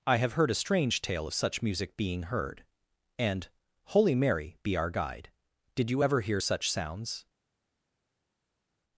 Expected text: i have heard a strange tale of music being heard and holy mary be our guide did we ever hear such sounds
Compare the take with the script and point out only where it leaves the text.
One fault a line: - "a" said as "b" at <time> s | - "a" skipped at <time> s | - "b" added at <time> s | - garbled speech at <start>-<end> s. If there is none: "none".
- "such" added at 1.3 s
- "we" said as "you" at 5.9 s